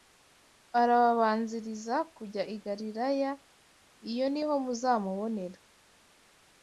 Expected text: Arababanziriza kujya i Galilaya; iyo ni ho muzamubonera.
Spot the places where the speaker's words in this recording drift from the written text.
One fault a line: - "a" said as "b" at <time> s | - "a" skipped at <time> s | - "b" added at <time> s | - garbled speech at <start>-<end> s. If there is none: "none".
none